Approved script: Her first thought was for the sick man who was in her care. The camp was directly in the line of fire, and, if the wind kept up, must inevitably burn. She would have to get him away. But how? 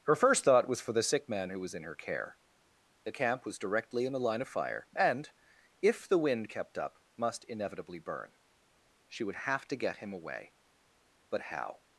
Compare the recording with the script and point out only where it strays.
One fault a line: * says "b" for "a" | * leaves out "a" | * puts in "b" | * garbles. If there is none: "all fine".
all fine